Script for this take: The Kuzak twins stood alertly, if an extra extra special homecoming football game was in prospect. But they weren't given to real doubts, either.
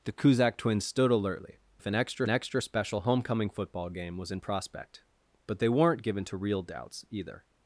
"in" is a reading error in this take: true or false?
false